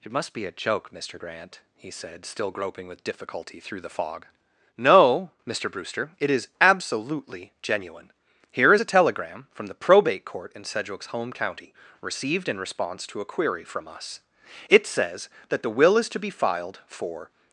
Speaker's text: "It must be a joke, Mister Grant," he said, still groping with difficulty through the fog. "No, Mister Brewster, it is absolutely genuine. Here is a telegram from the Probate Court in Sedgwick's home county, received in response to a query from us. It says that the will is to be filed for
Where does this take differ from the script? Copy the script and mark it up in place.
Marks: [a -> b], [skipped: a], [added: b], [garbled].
"It must be a joke, Mister Grant," he said, still groping with difficulty through the fog. "No, Mister Brewster, it is absolutely genuine. Here is a telegram from the Probate Court in Sedgwick's home county, received in response to a query from us. It says that the will is to be filed for